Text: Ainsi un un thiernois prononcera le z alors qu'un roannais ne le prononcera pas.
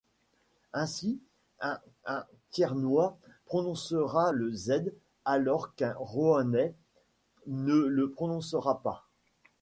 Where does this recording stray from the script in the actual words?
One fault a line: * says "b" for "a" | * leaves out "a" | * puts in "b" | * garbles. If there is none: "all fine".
all fine